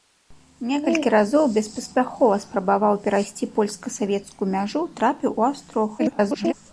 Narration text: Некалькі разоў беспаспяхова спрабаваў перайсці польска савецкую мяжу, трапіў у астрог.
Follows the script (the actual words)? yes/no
no